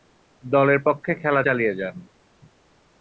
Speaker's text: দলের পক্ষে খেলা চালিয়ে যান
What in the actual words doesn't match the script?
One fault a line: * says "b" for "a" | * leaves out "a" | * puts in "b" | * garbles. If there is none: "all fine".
all fine